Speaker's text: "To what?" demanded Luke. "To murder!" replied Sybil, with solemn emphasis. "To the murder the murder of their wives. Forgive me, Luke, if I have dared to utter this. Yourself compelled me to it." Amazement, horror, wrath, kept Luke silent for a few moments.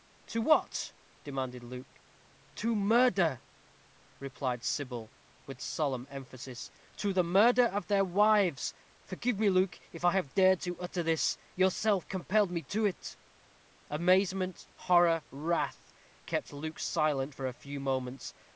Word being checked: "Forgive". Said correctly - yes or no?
yes